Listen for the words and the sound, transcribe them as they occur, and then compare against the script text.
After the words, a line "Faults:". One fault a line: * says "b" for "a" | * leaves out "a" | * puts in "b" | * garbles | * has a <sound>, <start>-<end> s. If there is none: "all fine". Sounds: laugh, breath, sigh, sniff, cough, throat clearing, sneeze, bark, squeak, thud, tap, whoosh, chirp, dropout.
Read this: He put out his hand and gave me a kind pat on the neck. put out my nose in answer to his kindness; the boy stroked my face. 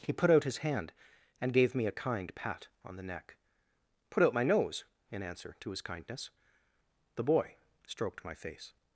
He put out his hand and gave me a kind pat on the neck. put out my nose in answer to his kindness; the boy stroked my face.
Faults:
all fine